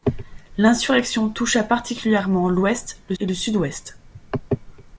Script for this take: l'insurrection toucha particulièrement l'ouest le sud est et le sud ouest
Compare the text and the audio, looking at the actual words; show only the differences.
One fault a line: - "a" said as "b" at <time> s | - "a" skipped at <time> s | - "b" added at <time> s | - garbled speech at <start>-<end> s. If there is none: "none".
- "sud est" skipped at 3.1 s